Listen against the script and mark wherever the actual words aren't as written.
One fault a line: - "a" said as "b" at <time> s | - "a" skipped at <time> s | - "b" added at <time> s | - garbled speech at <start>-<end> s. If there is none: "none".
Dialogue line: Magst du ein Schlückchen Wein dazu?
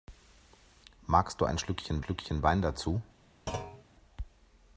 - "Schlückchen" added at 2.0 s